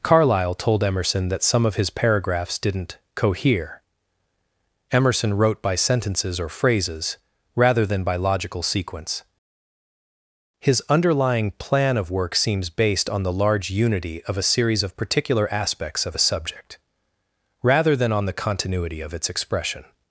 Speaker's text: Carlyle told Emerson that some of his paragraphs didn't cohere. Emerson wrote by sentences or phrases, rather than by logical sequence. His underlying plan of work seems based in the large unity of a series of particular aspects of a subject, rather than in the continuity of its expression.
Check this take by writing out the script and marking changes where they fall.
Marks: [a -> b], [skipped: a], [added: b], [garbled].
Carlyle told Emerson that some of his paragraphs didn't cohere. Emerson wrote by sentences or phrases, rather than by logical sequence. His underlying plan of work seems based [in -> on] the large unity of a series of particular aspects of a subject, rather than [in -> on] the continuity of its expression.